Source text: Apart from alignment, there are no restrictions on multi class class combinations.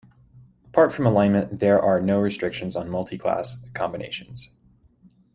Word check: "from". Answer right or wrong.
right